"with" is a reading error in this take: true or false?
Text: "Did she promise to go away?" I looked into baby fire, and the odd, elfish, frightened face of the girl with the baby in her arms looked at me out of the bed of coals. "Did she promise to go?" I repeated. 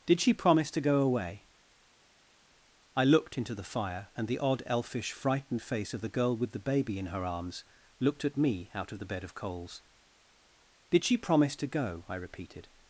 false